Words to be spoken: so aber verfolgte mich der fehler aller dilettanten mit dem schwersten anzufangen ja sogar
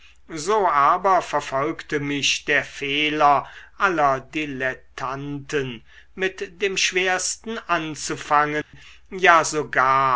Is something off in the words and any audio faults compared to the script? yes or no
yes